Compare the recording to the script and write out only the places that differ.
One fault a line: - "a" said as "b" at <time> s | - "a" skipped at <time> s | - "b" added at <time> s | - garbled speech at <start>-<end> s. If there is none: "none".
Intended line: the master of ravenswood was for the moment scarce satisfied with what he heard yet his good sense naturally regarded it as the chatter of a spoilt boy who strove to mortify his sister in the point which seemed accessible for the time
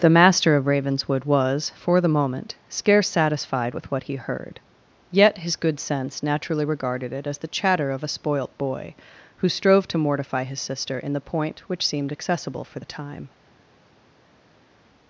none